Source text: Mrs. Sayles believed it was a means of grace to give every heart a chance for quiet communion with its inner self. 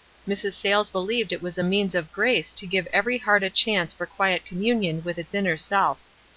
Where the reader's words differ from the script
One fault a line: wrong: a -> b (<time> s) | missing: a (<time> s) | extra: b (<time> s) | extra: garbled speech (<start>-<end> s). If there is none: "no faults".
no faults